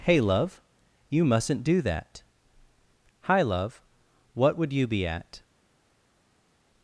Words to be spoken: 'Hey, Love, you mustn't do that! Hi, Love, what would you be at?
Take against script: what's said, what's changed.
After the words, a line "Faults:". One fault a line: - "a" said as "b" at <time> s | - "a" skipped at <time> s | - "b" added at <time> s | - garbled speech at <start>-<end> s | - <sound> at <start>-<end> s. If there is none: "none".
'Hey, Love, you mustn't do that! Hi, Love, what would you be at?
Faults:
none